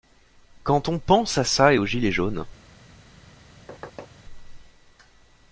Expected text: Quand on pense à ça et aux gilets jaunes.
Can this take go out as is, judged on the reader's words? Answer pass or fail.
pass